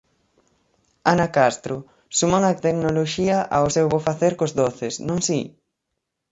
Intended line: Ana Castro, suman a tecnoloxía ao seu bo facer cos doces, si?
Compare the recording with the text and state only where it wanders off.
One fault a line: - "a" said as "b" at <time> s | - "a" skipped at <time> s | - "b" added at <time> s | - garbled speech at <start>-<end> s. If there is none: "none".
- "non" added at 5.1 s